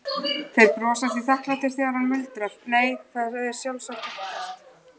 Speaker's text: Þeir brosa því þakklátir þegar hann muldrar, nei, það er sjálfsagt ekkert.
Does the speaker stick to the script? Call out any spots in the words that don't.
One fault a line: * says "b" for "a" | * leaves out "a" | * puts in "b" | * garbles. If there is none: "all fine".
all fine